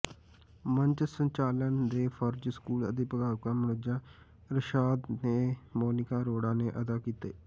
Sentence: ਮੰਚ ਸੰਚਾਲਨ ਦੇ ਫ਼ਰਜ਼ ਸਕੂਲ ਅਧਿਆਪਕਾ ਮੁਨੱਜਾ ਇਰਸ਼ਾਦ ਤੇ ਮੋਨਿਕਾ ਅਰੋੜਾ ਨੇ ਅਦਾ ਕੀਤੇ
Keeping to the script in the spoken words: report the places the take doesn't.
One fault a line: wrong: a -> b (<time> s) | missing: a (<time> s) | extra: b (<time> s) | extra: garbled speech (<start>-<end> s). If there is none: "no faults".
no faults